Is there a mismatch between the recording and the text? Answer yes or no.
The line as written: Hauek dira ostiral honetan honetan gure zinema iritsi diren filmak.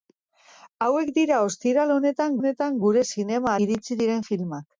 no